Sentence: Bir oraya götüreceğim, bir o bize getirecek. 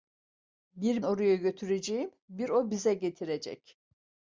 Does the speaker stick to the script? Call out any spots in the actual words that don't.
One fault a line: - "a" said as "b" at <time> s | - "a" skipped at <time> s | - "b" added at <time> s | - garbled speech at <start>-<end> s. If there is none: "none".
none